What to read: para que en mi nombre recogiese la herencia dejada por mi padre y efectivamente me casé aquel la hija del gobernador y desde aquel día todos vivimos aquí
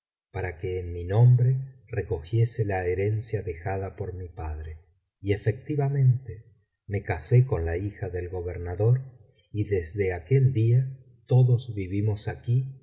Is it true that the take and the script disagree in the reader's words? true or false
true